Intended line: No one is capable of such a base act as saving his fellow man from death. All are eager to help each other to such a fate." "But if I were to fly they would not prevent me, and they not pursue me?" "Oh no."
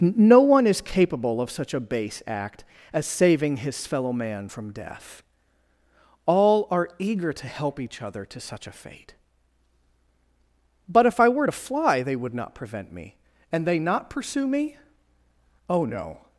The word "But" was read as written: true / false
true